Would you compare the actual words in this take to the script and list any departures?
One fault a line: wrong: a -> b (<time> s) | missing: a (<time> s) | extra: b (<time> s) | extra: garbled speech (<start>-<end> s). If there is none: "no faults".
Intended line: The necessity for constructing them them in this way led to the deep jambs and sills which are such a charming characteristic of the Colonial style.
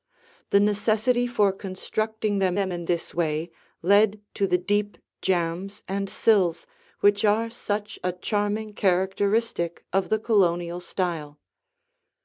no faults